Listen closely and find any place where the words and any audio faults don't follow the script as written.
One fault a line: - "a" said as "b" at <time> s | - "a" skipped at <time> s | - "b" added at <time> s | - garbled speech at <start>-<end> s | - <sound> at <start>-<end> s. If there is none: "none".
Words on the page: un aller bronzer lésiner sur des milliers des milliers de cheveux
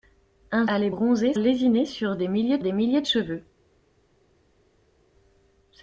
none